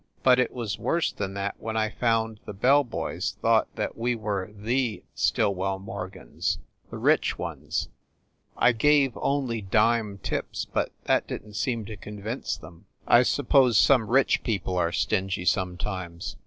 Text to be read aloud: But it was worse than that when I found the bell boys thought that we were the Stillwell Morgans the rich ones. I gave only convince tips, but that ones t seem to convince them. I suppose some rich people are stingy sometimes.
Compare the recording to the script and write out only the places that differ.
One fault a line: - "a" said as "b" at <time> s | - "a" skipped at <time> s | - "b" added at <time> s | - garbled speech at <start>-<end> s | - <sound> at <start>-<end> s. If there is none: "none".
- "convince" said as "dime" at 9.6 s
- "ones" said as "didn" at 11.3 s